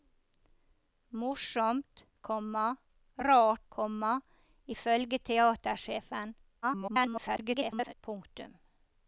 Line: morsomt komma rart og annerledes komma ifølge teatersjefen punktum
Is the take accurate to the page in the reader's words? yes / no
no